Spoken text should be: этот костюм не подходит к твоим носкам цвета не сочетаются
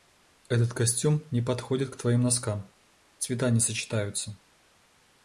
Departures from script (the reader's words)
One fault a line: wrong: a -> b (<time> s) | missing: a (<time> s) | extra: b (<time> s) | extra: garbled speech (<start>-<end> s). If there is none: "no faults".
no faults